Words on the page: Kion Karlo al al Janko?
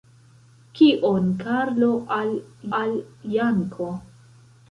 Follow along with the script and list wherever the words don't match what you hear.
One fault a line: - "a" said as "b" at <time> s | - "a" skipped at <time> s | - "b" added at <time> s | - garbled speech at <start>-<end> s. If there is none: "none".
none